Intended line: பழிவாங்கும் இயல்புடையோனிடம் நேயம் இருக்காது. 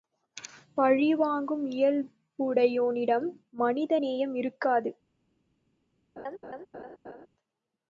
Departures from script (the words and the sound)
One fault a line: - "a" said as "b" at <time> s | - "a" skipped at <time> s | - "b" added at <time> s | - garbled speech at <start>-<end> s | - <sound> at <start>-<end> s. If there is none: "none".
- "மனித" added at 3.5 s
- laugh at 6.2-7.3 s